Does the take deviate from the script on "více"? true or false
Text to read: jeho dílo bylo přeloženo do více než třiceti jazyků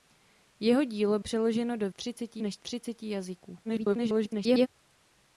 true